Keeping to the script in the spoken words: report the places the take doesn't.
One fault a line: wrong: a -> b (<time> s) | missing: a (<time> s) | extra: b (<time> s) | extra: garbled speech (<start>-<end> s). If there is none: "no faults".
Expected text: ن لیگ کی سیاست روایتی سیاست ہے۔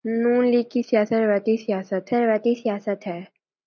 extra: روایتی سیاست (2.1 s)